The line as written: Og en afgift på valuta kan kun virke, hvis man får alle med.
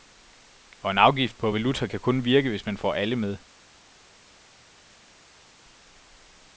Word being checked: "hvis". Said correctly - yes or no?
yes